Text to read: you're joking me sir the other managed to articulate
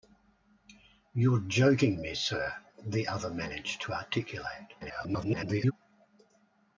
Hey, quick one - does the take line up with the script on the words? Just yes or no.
no